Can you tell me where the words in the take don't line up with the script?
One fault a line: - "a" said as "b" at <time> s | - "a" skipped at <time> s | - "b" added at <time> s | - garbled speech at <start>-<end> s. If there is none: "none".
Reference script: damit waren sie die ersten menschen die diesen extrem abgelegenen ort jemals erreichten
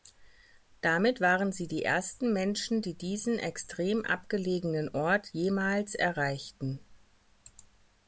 none